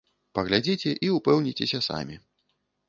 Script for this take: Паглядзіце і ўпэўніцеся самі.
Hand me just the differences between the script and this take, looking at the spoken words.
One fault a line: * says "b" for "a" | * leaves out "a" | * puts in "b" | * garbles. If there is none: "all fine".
all fine